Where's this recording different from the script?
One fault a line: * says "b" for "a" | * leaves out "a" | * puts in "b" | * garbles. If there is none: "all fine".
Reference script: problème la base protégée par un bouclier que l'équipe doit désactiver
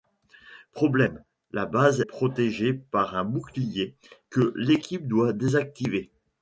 all fine